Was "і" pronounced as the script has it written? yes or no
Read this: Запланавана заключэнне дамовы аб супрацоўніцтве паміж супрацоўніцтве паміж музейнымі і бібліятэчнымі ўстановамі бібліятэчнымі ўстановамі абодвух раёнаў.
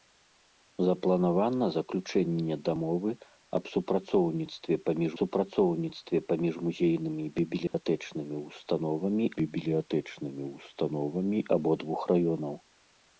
yes